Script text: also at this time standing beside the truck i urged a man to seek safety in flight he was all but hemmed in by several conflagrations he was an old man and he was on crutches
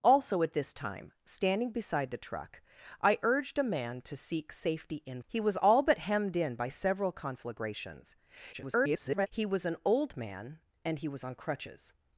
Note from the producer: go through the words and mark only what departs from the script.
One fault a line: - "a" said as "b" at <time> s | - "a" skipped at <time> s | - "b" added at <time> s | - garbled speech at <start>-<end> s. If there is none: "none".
- "flight" skipped at 5.2 s
- garbled speech at 8.5-9.3 s